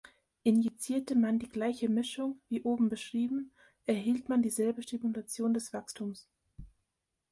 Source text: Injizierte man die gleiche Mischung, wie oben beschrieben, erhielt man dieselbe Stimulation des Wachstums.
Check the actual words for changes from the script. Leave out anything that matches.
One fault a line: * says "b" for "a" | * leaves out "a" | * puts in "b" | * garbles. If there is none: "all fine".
all fine